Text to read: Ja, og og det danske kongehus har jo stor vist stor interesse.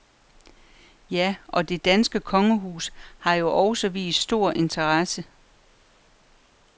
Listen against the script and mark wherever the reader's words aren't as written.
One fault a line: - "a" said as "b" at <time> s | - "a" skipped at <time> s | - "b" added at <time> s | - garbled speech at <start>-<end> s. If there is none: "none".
- "og" skipped at 1.7 s
- "stor" said as "også" at 3.5 s